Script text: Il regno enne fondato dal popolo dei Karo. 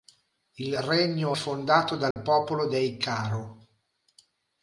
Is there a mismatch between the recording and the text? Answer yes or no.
yes